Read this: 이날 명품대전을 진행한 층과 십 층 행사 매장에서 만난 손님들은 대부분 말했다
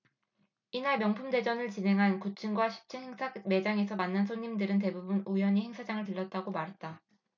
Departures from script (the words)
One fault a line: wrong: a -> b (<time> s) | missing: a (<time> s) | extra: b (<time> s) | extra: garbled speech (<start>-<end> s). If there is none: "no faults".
extra: 구 (2.2 s)
extra: 우연히 행사장을 들렀다고 (5.2 s)